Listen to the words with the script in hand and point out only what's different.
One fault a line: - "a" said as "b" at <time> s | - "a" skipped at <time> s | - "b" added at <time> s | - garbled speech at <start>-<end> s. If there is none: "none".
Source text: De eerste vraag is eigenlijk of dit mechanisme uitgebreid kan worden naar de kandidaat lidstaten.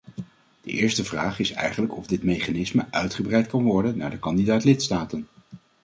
none